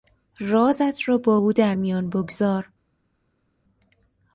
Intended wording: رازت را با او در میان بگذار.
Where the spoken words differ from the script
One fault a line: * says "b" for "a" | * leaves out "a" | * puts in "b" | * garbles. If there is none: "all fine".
all fine